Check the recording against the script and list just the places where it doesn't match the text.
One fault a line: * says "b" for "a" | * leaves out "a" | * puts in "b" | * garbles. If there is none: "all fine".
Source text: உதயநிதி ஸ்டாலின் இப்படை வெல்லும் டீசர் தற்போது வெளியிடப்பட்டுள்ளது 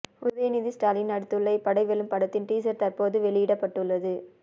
* puts in "நடித்துள்ள"
* puts in "படத்தின்"